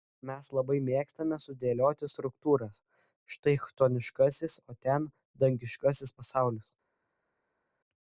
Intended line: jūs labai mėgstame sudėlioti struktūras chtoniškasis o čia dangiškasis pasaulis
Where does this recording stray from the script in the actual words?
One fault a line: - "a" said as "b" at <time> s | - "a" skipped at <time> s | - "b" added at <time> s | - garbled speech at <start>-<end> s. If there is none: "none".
- "jūs" said as "mes" at 0.3 s
- "štai" added at 3.4 s
- "čia" said as "ten" at 4.9 s